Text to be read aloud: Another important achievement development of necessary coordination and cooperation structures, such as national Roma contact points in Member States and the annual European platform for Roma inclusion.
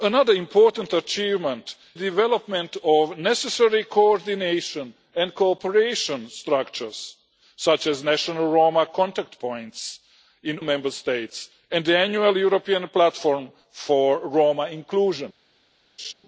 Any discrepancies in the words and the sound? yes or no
yes